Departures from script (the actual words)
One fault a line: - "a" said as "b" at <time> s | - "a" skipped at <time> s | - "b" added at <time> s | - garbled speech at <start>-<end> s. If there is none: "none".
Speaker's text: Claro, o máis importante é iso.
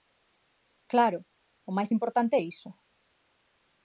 none